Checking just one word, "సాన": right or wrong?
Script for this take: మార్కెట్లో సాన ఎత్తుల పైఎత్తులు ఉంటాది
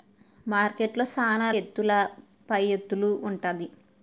right